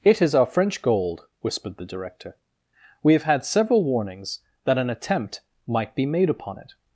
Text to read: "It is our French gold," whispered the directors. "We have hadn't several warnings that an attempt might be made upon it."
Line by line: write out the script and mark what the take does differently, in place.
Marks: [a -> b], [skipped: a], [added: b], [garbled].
"It is our French gold," whispered the [directors. -> director] "We have [hadn't -> had] several warnings that an attempt might be made upon it."